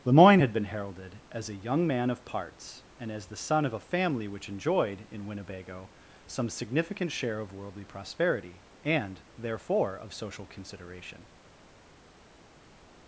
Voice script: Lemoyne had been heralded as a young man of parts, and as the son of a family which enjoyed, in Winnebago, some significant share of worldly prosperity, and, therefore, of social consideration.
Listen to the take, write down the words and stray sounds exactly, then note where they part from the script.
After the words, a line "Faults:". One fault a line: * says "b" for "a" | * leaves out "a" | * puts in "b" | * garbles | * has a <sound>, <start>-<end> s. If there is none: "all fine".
Lemoyne had been heralded as a young man of parts, and as the son of a family which enjoyed, in Winnebago, some significant share of worldly prosperity, and, therefore, of social consideration.
Faults:
all fine